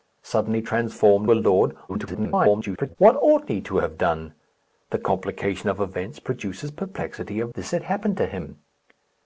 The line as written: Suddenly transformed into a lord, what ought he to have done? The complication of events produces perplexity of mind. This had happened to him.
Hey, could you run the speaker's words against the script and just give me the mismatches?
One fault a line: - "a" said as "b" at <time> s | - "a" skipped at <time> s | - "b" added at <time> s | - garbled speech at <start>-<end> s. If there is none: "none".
- "into" skipped at 1.3 s
- garbled speech at 1.9-3.0 s
- "mind" skipped at 7.5 s